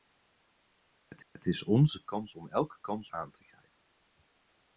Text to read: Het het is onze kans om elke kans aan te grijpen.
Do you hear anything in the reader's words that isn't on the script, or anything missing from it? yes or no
no